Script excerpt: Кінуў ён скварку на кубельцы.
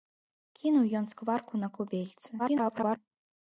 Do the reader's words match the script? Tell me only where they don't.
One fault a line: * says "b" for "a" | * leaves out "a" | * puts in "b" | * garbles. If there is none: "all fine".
* garbles